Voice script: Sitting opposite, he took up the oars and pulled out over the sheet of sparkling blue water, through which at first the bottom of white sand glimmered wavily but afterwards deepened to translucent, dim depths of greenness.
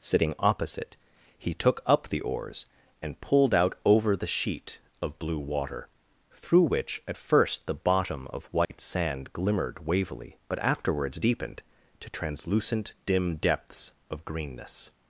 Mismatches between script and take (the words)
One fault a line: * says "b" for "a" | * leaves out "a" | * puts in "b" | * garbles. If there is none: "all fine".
* leaves out "sparkling"